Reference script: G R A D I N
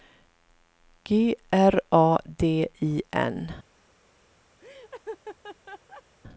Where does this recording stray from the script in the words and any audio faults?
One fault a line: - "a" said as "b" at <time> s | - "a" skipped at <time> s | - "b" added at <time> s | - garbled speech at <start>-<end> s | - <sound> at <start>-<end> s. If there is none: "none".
- laugh at 4.6-6.0 s